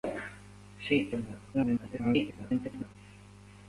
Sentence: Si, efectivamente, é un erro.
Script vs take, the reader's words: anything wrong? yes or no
yes